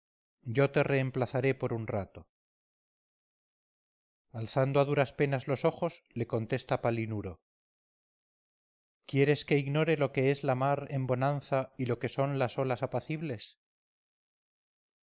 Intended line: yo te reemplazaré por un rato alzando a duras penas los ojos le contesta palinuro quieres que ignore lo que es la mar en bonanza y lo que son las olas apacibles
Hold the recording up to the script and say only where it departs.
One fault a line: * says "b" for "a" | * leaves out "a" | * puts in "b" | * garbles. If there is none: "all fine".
all fine